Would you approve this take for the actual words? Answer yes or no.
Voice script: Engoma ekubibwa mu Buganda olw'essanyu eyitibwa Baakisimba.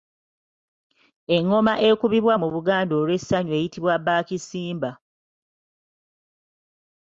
yes